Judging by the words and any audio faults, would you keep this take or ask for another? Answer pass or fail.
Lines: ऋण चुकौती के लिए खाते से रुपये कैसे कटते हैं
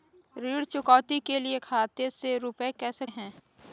fail